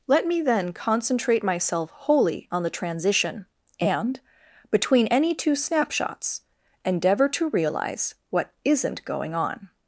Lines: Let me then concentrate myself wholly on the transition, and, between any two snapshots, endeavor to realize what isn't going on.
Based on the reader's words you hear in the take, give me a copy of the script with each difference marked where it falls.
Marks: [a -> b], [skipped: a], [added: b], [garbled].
Let me then concentrate myself wholly on the transition, and, between any two snapshots, endeavor to realize what isn't going on.